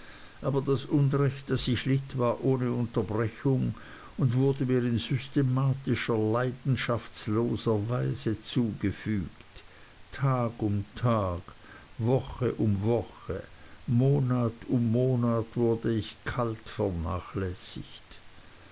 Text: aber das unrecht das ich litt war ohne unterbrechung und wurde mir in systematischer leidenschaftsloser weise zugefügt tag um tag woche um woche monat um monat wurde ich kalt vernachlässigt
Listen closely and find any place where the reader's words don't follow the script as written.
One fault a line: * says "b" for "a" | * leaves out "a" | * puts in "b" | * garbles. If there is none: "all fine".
all fine